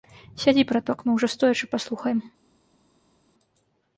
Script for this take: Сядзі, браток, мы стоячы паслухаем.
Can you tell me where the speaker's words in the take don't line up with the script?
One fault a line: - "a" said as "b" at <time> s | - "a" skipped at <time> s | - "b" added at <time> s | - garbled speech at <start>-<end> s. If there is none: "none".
- "ўжо" added at 1.2 s